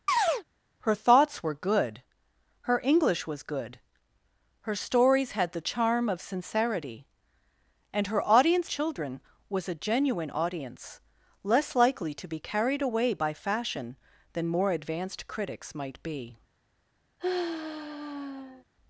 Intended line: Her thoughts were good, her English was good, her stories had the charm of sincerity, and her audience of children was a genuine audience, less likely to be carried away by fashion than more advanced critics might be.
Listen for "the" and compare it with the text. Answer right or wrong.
right